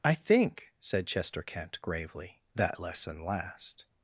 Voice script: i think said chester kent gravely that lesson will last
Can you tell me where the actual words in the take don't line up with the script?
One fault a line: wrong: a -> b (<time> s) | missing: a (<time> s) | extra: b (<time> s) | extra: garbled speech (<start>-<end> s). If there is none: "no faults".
missing: will (3.2 s)